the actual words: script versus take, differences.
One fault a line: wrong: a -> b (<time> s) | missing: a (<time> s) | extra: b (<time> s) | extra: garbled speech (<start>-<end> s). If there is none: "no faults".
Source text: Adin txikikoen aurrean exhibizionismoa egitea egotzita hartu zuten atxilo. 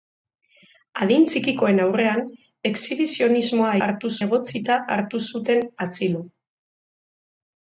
wrong: egitea -> hartu (3.9 s)